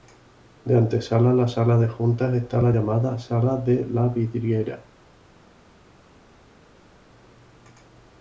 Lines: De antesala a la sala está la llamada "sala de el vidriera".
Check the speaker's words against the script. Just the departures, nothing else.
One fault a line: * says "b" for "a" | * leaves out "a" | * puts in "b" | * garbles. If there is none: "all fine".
* puts in "de juntas"
* says "la" for "el"